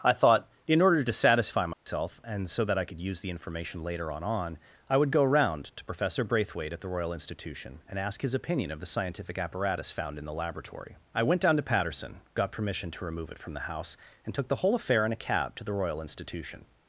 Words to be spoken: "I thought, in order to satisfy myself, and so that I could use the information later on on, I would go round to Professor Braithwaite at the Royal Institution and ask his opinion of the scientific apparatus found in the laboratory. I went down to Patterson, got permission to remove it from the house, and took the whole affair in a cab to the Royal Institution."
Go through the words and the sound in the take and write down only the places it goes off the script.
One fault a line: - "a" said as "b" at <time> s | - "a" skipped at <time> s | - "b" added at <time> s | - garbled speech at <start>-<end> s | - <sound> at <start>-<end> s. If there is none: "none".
- dropout at 1.7-1.9 s